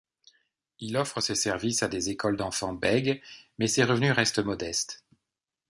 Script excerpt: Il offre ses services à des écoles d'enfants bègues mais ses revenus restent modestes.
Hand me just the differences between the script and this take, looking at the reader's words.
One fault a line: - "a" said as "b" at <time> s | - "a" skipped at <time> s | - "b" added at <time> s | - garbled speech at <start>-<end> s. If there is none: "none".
none